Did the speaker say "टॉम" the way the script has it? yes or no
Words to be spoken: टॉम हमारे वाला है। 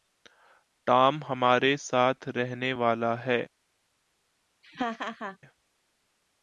yes